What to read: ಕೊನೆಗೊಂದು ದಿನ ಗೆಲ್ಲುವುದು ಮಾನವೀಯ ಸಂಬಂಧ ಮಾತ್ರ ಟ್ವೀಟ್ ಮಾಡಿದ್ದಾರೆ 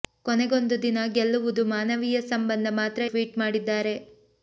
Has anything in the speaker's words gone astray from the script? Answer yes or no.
no